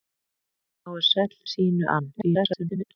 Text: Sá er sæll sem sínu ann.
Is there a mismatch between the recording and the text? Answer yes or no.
yes